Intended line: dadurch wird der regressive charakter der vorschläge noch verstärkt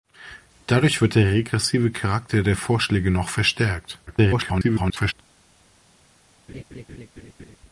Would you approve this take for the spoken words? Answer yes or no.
no